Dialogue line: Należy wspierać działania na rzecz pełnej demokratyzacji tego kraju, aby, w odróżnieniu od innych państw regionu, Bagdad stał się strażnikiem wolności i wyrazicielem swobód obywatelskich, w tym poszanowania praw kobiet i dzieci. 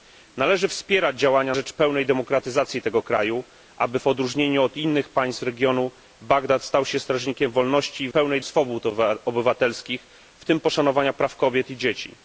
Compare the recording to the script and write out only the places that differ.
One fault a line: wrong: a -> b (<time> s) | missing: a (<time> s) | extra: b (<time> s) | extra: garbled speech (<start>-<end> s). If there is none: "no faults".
missing: na (1.6 s)
wrong: wyrazicielem -> pełnej (8.1 s)